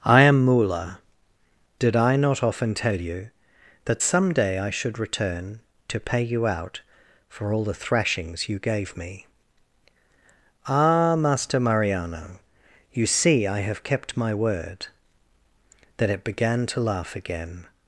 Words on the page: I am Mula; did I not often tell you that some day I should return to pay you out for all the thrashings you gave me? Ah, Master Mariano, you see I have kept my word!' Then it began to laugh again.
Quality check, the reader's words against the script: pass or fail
pass